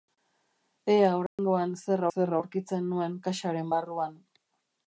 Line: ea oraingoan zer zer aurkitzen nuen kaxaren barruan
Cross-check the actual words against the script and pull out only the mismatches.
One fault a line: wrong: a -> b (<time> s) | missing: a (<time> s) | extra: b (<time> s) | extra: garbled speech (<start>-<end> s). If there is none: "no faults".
no faults